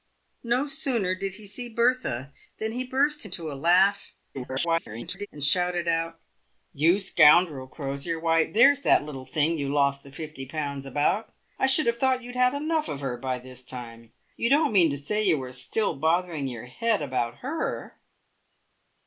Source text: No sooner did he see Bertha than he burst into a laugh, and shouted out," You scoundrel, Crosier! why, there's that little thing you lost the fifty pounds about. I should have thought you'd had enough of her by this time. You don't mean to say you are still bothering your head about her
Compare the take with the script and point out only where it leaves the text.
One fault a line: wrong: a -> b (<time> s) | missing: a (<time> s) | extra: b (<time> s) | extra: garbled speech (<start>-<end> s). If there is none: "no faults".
extra: garbled speech (4.3-5.3 s)